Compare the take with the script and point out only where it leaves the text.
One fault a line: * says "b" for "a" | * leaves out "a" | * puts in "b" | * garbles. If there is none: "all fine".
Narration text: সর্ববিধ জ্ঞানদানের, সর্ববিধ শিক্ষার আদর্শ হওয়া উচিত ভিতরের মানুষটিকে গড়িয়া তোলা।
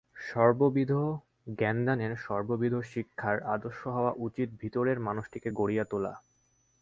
all fine